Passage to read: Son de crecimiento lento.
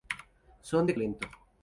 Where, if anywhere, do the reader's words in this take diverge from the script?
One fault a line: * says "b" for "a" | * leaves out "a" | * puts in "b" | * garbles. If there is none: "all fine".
* leaves out "crecimiento"